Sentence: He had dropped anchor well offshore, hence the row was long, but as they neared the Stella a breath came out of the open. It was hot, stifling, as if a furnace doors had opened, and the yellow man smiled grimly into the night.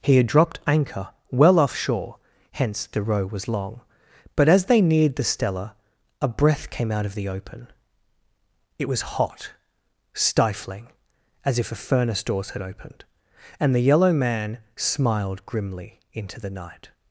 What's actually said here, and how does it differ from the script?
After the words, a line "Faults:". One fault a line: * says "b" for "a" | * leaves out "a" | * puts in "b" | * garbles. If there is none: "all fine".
He had dropped anchor well offshore, hence the row was long, but as they neared the Stella a breath came out of the open. It was hot, stifling, as if a furnace doors had opened, and the yellow man smiled grimly into the night.
Faults:
all fine